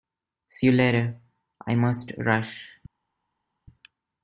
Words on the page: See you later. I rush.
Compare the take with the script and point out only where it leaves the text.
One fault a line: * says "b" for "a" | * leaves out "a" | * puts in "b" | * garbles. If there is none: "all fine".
* puts in "must"